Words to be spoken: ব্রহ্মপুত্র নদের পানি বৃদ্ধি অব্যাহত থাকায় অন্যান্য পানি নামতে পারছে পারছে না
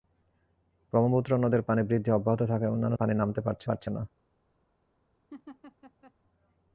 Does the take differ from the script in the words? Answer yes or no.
no